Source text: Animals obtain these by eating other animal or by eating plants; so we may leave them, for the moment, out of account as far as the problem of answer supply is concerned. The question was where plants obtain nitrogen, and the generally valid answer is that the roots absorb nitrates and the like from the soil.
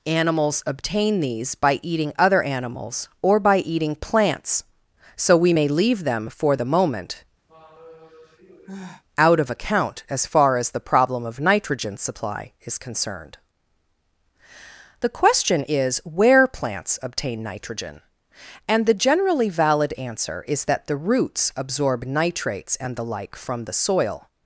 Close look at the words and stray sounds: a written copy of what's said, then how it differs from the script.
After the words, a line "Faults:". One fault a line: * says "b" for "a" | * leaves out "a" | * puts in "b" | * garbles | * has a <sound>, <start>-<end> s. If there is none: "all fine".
Animals obtain these by eating other animals or by eating plants; so we may leave them, for the moment, out of account as far as the problem of nitrogen supply is concerned. The question is where plants obtain nitrogen, and the generally valid answer is that the roots absorb nitrates and the like from the soil.
Faults:
* says "animals" for "animal"
* has a sigh, 7.5-9.0 s
* says "nitrogen" for "answer"
* says "is" for "was"